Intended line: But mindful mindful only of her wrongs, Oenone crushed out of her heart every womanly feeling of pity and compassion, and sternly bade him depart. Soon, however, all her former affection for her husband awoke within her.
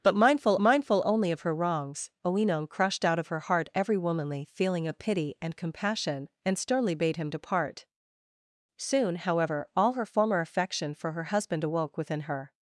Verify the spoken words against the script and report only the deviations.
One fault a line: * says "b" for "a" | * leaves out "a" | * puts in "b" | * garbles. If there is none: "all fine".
all fine